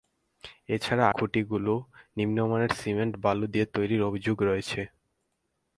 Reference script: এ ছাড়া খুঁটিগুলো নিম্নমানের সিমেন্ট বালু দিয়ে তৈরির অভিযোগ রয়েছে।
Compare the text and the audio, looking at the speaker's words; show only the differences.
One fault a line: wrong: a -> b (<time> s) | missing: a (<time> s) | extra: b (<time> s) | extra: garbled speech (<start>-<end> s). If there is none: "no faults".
no faults